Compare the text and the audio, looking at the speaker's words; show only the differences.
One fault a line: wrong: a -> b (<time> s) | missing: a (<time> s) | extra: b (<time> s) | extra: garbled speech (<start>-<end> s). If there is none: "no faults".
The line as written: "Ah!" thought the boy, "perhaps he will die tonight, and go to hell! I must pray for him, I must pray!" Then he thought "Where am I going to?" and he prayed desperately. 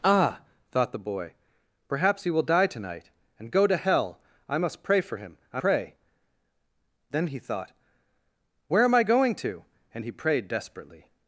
missing: must (5.6 s)